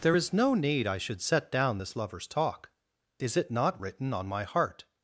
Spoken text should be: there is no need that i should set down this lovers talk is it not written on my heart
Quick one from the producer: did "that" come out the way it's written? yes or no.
no